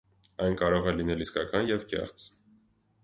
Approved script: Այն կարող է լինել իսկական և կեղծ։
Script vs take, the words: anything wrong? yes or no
no